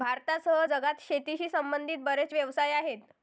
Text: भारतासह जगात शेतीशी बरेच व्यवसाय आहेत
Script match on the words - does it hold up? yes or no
no